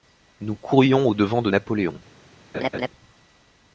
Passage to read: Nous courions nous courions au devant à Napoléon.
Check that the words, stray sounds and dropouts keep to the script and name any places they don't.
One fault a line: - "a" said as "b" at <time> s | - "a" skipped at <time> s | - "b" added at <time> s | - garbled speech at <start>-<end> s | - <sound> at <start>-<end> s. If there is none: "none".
- "nous courions" skipped at 1.1 s
- "à" said as "de" at 1.4 s
- laugh at 2.5-2.9 s